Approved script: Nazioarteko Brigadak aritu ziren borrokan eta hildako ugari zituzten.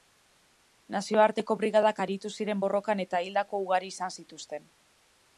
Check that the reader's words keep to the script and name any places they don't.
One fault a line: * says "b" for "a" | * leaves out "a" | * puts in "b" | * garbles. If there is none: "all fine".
* puts in "izan"